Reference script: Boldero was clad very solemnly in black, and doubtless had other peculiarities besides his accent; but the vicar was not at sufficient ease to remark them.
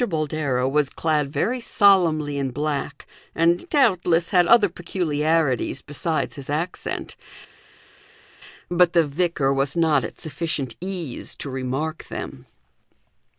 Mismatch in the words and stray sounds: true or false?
false